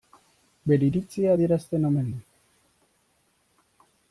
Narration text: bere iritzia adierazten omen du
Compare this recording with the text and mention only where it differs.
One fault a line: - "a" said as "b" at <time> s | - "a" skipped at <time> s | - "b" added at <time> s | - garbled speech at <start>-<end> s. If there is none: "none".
none